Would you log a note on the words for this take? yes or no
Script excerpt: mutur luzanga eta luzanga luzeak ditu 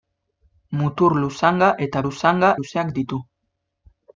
no